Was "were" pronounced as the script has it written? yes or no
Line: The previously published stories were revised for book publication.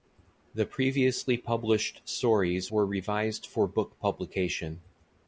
yes